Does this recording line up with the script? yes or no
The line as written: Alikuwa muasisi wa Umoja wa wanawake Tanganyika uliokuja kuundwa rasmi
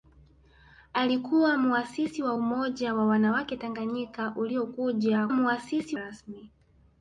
no